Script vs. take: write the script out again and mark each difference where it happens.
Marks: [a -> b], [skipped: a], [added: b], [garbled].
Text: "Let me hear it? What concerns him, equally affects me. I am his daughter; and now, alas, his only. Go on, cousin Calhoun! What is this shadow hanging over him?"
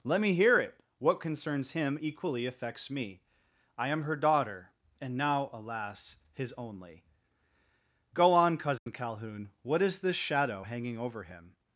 "Let me hear it? What concerns him, equally affects me. I am [his -> her] daughter; and now, alas, his only. Go on, cousin Calhoun! What is this shadow hanging over him?"